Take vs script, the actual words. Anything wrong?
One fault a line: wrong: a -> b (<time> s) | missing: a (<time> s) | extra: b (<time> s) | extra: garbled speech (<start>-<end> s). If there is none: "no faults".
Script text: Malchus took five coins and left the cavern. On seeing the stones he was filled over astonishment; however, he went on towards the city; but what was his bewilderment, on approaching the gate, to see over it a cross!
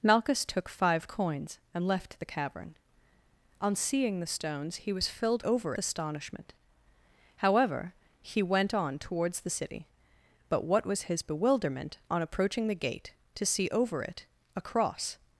no faults